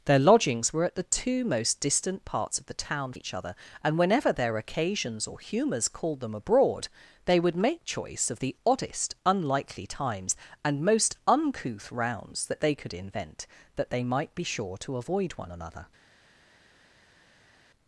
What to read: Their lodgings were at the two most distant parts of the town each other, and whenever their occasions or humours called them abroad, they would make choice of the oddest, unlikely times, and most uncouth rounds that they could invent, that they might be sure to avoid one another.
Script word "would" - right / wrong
right